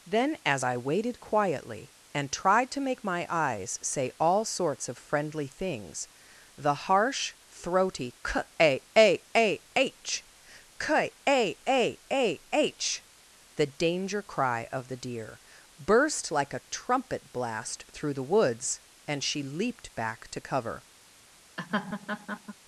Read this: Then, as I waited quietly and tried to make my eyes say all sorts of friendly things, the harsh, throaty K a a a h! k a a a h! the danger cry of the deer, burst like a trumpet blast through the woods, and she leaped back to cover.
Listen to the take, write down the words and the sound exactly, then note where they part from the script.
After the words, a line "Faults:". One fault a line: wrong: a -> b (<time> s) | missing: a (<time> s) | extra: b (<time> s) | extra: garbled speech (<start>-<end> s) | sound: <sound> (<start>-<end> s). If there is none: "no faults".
Then, as I waited quietly and tried to make my eyes say all sorts of friendly things, the harsh, throaty K a a a h! k a a a h! the danger cry of the deer, burst like a trumpet blast through the woods, and she leaped back to cover.
Faults:
sound: laugh (21.6-22.5 s)